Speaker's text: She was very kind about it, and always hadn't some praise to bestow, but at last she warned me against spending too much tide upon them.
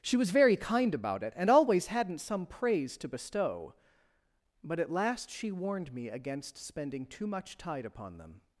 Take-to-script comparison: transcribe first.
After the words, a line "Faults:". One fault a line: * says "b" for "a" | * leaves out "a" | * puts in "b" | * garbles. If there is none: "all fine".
She was very kind about it, and always hadn't some praise to bestow, but at last she warned me against spending too much tide upon them.
Faults:
all fine